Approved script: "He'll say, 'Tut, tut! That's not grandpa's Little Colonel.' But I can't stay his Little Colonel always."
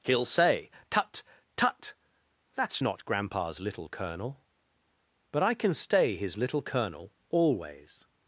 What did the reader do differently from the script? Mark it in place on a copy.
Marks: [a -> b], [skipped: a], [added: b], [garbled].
"He'll say, 'Tut, tut! That's not grandpa's Little Colonel.' But I [can't -> can] stay his Little Colonel always."